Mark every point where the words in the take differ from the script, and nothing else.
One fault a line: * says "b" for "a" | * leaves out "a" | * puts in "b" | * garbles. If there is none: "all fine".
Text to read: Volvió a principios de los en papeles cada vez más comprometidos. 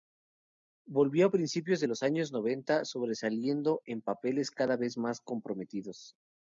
* puts in "años noventa sobresaliendo"